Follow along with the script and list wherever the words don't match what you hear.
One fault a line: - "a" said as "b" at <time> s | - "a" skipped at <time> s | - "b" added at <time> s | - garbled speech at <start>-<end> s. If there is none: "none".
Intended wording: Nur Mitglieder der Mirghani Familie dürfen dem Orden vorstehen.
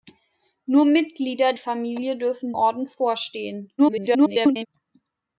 - "der Mirghani" skipped at 1.5 s
- "dem" skipped at 2.5 s
- garbled speech at 3.8-4.7 s